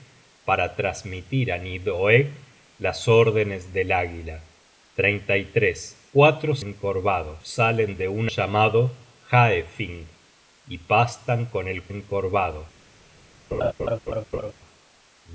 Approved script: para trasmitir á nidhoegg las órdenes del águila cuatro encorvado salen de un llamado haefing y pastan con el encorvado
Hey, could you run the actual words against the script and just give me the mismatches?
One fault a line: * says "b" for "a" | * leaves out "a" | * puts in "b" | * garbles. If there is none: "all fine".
all fine